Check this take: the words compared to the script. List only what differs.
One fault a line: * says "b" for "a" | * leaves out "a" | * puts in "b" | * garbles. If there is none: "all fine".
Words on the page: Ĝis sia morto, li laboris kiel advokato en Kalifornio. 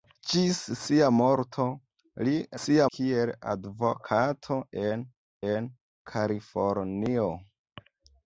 * says "sia" for "laboris"
* puts in "en"